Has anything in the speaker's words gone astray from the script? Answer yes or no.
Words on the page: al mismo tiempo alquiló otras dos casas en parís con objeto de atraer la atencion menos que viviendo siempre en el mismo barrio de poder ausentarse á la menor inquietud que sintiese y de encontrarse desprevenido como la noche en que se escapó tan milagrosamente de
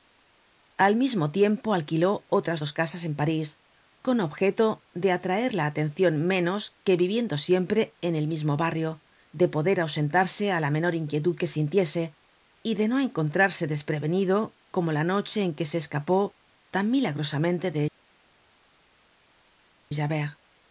yes